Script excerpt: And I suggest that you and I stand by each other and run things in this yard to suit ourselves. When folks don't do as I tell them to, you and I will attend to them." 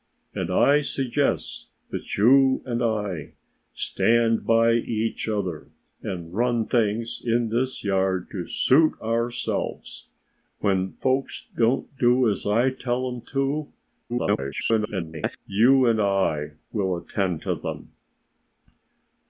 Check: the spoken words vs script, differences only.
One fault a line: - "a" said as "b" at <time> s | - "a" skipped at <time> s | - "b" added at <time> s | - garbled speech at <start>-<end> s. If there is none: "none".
- garbled speech at 14.1-15.4 s